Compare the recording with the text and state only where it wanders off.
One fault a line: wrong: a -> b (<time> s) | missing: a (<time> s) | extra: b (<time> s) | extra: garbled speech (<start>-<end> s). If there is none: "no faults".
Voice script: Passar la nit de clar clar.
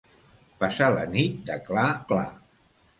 no faults